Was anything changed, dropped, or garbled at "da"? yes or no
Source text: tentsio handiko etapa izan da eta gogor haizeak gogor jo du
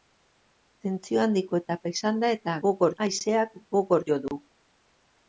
no